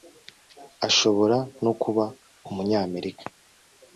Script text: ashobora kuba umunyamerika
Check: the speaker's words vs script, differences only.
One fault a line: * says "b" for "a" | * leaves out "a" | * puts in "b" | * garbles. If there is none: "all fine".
* puts in "no"